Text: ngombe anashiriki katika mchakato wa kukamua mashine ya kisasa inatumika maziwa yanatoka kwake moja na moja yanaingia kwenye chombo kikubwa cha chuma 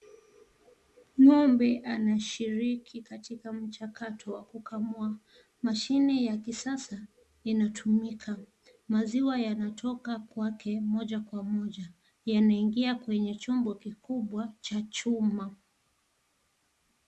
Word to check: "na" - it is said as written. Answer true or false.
false